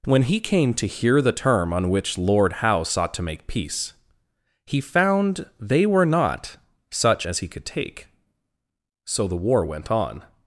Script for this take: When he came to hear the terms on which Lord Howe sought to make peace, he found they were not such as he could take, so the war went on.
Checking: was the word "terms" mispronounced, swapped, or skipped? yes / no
yes